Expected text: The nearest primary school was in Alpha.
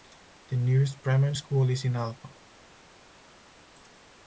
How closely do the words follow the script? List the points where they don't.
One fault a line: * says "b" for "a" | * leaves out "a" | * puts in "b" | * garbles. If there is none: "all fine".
* says "is" for "was"